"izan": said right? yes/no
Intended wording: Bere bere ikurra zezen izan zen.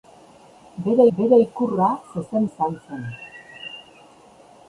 yes